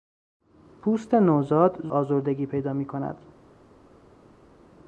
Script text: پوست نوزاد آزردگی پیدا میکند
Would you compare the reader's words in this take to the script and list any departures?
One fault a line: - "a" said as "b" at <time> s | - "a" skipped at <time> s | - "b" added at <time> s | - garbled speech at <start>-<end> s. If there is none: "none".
none